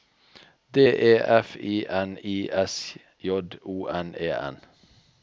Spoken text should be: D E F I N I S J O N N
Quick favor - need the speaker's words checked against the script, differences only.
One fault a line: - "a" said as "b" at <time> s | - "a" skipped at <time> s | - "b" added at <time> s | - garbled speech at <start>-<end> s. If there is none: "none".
- "E" added at 4.2 s